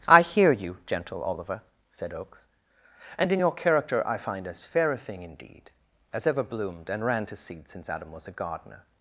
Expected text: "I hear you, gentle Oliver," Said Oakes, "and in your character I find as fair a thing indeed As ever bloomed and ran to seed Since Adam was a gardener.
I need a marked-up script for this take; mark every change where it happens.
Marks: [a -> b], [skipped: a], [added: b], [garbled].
"I hear you, gentle Oliver," Said Oakes, "and in your character I find as fair a thing indeed As ever bloomed and ran to seed Since Adam was a gardener.